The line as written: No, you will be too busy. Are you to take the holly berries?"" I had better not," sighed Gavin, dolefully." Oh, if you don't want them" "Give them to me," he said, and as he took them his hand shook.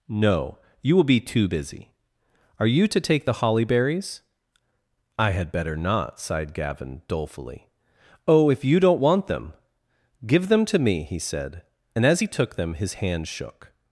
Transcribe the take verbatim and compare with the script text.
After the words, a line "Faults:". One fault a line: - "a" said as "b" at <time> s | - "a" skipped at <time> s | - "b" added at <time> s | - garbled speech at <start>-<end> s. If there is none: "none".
No, you will be too busy. Are you to take the holly berries?"" I had better not," sighed Gavin, dolefully." Oh, if you don't want them" "Give them to me," he said, and as he took them his hand shook.
Faults:
none